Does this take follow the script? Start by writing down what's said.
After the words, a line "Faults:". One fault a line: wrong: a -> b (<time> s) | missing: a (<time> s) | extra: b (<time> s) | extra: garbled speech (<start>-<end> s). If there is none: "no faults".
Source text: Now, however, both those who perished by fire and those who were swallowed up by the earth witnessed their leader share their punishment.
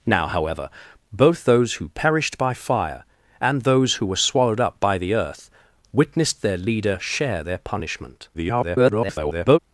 Now, however, both those who perished by fire and those who were swallowed up by the earth witnessed their leader share their punishment. [garbled]
Faults:
extra: garbled speech (8.3-9.6 s)